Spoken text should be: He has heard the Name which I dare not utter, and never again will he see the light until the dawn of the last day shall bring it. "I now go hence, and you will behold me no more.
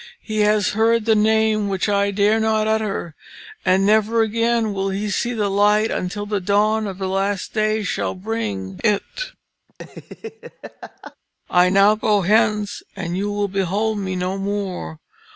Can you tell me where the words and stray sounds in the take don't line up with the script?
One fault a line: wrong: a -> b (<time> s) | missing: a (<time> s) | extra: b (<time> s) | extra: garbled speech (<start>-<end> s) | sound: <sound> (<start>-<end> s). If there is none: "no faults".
sound: laugh (9.7-11.2 s)